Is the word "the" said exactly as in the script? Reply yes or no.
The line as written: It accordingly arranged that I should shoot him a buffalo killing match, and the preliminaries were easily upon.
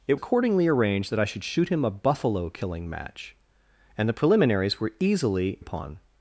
yes